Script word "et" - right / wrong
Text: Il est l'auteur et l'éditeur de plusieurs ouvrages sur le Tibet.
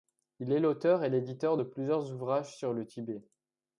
right